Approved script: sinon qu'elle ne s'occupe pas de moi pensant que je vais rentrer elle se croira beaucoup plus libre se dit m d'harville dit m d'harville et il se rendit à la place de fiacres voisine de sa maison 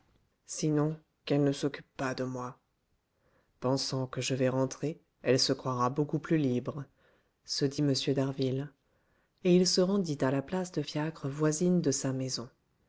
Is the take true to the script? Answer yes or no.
no